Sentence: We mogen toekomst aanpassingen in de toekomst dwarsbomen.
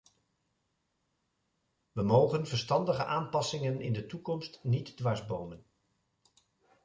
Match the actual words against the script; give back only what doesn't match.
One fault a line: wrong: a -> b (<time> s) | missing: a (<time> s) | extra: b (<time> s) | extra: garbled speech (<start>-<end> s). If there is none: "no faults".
wrong: toekomst -> verstandige (2.5 s)
extra: niet (4.6 s)